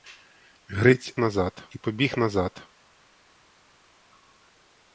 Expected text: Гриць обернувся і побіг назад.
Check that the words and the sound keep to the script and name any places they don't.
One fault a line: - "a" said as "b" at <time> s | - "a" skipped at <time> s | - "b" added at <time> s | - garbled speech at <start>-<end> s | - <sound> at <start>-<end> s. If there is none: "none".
- "обернувся" said as "назад" at 1.2 s